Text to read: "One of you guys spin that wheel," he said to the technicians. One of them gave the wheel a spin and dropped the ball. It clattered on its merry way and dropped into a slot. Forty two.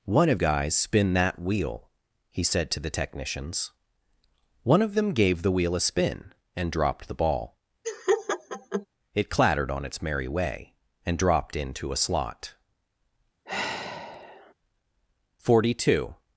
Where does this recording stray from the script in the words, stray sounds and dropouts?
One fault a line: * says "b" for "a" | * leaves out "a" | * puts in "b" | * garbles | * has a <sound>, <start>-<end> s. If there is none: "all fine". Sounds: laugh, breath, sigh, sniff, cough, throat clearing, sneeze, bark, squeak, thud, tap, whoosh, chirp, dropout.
* leaves out "you"
* has a laugh, 7.8-8.9 s
* has a sigh, 13.4-14.5 s